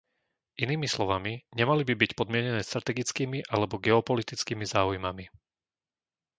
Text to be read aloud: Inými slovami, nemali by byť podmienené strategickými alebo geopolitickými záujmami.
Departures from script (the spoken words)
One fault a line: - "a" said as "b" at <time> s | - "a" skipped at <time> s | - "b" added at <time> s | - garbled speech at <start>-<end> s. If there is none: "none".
none